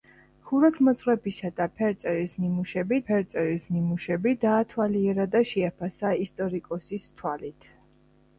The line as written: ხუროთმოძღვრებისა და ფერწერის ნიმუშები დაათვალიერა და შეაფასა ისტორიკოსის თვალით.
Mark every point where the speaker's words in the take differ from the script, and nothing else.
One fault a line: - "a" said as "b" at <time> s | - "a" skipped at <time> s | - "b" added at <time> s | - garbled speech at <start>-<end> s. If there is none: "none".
- "ფერწერის ნიმუშები" added at 3.1 s